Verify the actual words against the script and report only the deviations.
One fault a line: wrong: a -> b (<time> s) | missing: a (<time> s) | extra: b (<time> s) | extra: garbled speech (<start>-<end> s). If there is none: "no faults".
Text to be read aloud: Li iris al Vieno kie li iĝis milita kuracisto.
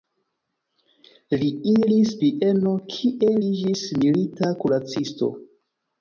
missing: al (2.1 s)
missing: li (3.3 s)